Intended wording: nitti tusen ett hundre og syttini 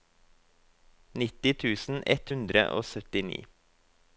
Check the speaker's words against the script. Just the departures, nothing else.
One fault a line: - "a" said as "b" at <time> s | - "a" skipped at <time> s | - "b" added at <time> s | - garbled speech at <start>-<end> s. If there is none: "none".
none